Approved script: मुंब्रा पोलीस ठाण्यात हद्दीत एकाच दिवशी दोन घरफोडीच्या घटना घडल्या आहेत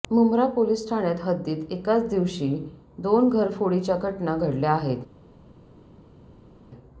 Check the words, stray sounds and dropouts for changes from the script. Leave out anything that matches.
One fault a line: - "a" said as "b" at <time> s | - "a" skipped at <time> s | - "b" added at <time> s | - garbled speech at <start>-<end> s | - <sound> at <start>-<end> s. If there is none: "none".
none